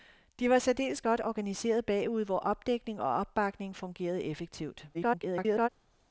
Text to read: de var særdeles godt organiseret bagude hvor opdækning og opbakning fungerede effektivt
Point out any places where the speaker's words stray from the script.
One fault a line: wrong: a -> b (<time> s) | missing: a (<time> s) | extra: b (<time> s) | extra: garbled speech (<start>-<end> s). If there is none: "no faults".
extra: garbled speech (4.9-5.7 s)